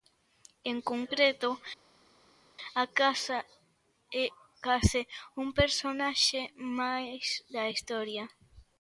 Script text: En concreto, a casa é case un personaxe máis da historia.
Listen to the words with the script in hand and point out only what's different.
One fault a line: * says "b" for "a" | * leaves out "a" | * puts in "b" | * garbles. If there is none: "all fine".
all fine